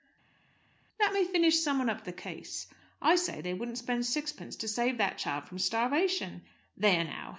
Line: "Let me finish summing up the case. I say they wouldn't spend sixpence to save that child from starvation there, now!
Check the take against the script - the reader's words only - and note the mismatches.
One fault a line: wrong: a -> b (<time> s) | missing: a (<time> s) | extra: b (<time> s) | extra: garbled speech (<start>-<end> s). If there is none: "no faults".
no faults